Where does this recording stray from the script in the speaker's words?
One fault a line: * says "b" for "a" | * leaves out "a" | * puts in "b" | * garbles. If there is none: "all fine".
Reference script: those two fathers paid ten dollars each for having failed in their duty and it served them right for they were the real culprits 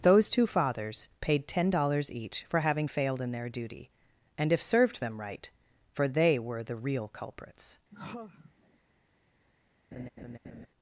* says "if" for "it"